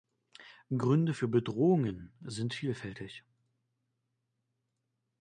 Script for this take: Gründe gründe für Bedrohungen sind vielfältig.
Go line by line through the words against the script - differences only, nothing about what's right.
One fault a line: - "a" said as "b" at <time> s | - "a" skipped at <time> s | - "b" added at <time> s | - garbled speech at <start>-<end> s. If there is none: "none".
- "gründe" skipped at 1.1 s